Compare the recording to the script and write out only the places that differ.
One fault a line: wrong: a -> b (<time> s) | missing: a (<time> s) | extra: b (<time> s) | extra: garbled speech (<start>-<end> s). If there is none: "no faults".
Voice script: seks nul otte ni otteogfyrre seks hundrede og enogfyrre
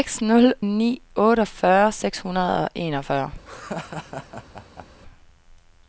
missing: otte (0.5 s)